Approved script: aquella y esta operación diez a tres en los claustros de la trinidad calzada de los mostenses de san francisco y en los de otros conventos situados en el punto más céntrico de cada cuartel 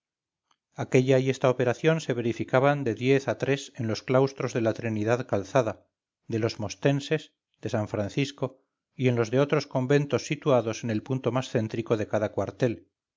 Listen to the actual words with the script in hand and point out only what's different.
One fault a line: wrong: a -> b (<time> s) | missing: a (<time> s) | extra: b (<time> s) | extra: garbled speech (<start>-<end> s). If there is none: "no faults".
extra: se verificaban de (2.0 s)